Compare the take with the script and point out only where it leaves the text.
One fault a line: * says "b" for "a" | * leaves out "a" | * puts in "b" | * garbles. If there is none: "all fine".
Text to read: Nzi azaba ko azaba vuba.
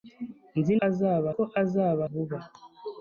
all fine